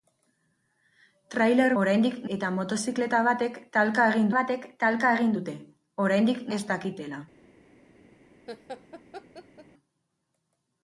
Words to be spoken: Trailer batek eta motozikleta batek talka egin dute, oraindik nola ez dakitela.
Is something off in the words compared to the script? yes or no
yes